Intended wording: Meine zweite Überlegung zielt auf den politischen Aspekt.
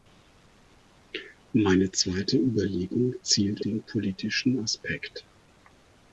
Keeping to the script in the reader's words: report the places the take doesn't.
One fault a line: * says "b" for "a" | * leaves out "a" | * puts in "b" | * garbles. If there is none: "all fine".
* leaves out "auf"